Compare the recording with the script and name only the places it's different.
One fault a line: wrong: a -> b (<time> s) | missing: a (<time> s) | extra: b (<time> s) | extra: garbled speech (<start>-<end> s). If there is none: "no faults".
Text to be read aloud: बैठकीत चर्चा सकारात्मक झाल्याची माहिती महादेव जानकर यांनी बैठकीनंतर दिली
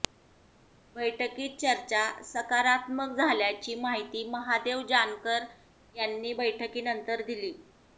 no faults